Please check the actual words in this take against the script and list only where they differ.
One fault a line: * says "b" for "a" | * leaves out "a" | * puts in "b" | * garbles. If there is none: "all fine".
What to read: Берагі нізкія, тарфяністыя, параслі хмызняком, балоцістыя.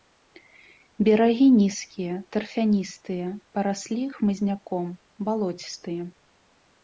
all fine